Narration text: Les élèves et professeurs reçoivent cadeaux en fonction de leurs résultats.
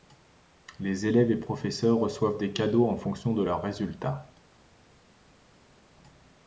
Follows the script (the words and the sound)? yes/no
no